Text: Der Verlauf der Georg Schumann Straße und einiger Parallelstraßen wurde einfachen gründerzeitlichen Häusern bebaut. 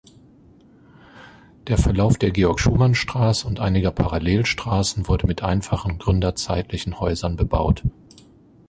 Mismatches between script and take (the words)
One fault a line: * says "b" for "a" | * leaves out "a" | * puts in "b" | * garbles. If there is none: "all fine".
* puts in "mit"